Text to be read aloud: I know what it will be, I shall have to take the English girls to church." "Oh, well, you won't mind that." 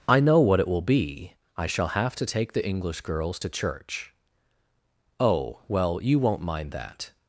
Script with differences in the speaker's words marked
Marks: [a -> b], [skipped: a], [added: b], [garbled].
I know what it will be, I shall have to take the English girls to church." "Oh, well, you won't mind that."